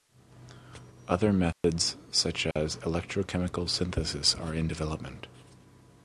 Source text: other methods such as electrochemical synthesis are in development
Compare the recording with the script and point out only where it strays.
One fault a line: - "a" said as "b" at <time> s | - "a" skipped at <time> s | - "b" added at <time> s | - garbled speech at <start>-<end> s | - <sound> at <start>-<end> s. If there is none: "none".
- dropout at 1.5-1.6 s
- dropout at 2.5-2.6 s